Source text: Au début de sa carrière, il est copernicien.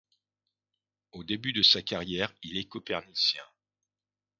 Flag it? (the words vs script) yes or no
no